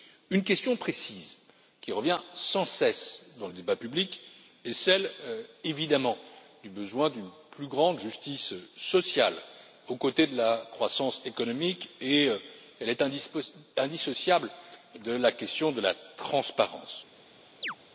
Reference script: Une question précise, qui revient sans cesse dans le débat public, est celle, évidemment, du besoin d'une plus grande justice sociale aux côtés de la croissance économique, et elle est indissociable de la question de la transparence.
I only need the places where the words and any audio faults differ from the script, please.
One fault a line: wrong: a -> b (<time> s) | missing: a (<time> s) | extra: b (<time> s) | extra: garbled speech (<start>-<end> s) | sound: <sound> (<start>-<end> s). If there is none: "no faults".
sound: chirp (17.6-17.7 s)